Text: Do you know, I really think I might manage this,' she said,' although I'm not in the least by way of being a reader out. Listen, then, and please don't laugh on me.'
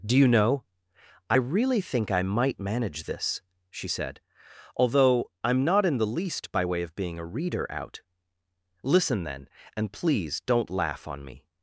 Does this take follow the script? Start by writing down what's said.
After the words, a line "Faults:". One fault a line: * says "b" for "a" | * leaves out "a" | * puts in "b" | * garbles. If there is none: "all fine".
Do you know, I really think I might manage this,' she said,' although I'm not in the least by way of being a reader out. Listen, then, and please don't laugh on me.'
Faults:
all fine